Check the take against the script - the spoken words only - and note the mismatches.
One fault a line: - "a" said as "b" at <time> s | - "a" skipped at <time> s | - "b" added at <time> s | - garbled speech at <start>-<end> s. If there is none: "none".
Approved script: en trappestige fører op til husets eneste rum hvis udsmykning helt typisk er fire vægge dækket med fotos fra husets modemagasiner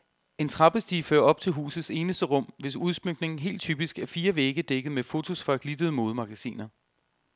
- "husets" said as "glittede" at 5.6 s